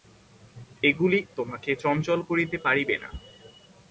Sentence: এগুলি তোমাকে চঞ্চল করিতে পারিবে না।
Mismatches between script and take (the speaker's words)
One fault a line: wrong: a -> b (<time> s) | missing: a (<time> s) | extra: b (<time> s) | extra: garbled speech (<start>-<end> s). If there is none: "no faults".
no faults